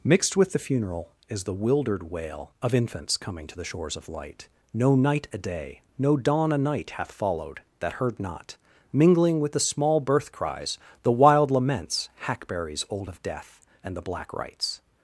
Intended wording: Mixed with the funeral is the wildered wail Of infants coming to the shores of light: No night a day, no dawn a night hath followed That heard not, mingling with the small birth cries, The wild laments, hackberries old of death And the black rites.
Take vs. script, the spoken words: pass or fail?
pass